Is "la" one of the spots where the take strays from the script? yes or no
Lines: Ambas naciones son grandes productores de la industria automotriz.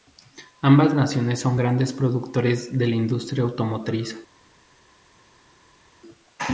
no